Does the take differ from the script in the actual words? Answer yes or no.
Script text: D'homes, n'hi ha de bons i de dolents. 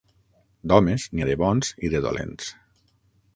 no